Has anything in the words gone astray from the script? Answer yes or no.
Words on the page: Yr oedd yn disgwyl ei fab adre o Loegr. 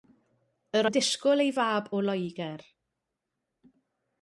yes